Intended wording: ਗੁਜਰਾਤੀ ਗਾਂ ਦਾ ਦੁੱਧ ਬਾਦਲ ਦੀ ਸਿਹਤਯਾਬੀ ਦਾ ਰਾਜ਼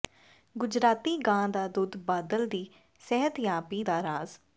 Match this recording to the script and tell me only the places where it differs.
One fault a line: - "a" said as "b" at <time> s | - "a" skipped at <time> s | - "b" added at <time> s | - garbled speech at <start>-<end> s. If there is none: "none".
none